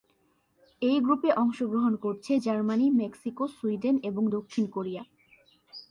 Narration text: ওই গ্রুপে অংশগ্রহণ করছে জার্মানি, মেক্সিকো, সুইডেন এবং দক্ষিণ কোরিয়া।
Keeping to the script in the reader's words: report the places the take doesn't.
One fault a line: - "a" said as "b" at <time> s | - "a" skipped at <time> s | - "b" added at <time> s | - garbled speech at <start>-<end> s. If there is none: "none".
- "ওই" said as "এই" at 0.8 s